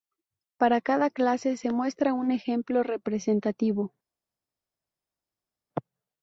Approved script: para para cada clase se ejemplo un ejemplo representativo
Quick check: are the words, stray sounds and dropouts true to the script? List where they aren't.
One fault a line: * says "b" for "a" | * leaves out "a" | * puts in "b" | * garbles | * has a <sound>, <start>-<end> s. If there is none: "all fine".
* leaves out "para"
* says "muestra" for "ejemplo"